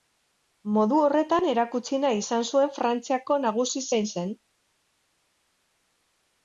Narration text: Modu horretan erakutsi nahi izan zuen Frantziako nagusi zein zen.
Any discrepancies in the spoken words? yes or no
no